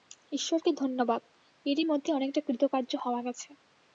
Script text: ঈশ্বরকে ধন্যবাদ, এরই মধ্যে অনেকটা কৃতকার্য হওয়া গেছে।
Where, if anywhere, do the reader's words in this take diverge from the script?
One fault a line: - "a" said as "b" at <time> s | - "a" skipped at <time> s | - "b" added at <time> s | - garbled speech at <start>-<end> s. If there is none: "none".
none